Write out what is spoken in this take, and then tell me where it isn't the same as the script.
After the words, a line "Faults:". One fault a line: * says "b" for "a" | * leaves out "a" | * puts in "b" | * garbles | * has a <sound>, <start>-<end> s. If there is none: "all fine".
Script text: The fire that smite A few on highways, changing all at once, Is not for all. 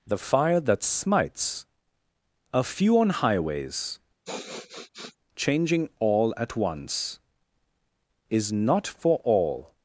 The fire that smites A few on highways, changing all at once, Is not for all.
Faults:
* says "smites" for "smite"
* has a sniff, 4.2-5.2 s